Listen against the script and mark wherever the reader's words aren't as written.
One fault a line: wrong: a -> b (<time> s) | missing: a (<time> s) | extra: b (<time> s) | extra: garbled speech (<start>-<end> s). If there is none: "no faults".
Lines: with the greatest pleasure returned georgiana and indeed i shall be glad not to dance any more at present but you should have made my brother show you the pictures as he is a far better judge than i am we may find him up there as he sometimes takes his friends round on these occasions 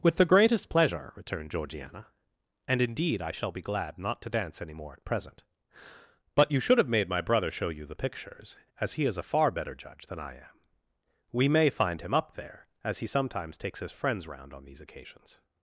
no faults